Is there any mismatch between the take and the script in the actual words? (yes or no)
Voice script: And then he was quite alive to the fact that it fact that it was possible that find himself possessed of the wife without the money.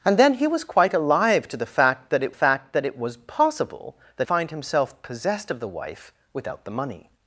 no